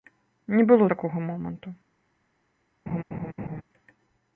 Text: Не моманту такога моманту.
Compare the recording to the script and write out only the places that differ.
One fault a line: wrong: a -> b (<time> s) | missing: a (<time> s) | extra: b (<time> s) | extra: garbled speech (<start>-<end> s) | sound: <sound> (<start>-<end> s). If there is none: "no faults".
wrong: моманту -> было (0.7 s)
sound: laugh (2.9-3.6 s)